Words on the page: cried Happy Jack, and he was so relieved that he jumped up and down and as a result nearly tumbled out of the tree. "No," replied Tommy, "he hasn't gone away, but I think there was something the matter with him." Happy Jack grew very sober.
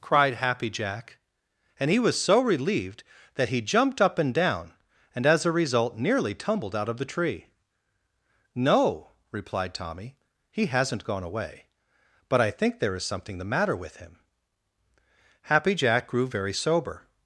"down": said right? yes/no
yes